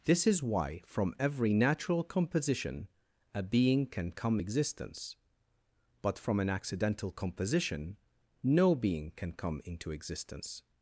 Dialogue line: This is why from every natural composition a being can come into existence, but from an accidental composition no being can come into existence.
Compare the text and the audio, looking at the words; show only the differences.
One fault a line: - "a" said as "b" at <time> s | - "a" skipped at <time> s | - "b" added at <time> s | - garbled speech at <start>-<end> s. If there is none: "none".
- "into" skipped at 4.4 s